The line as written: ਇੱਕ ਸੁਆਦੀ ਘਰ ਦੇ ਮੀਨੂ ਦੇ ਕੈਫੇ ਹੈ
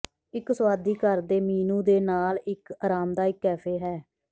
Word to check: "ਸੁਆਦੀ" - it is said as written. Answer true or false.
true